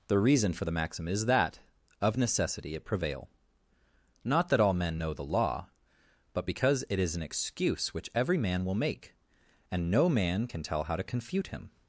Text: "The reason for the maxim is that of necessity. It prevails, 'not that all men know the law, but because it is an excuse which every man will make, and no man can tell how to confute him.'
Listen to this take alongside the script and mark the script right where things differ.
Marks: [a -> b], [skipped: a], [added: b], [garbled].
"The reason for the maxim is that of necessity. It [prevails, -> prevail] 'not that all men know the law, but because it is an excuse which every man will make, and no man can tell how to confute him.'